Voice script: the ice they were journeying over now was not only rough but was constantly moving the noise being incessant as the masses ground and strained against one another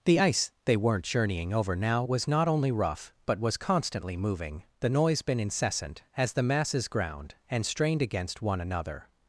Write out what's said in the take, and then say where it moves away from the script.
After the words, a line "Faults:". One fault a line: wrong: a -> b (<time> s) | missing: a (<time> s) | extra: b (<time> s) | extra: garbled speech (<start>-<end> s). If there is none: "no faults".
the ice they weren't journeying over now was not only rough but was constantly moving the noise been incessant as the masses ground and strained against one another
Faults:
wrong: were -> weren't (0.8 s)
wrong: being -> been (5.2 s)